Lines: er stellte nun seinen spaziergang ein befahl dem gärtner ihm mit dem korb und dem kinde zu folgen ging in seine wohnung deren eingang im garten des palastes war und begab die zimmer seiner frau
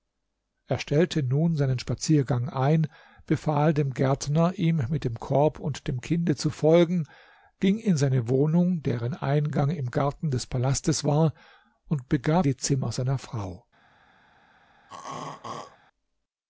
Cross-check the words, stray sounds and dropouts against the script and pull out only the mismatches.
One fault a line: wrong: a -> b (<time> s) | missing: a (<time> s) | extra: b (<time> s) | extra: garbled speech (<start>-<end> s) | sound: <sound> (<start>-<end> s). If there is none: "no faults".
sound: throat clearing (14.9-15.8 s)